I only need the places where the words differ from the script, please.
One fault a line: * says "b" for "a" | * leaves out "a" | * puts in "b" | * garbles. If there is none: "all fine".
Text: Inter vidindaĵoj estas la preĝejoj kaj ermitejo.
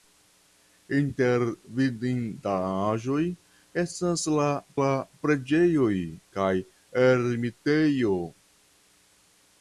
* puts in "la"